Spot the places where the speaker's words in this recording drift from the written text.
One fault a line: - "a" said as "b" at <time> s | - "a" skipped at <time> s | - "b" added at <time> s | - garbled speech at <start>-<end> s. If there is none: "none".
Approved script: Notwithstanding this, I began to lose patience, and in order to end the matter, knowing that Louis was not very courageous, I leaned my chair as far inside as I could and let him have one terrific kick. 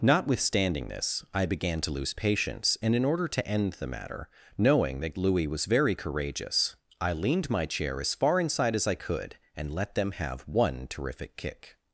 - "not" skipped at 5.7 s
- "him" said as "them" at 10.0 s